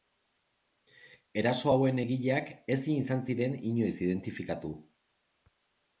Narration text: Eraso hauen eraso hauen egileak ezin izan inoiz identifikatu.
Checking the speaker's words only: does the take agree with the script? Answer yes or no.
no